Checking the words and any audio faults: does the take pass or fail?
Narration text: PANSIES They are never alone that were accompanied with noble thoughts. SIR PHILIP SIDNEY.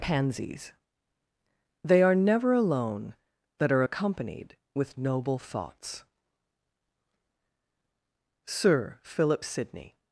fail